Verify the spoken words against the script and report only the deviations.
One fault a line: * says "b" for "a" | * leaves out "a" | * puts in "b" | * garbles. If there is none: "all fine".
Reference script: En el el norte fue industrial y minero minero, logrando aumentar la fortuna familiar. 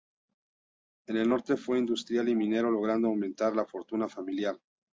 * leaves out "el"
* leaves out "minero"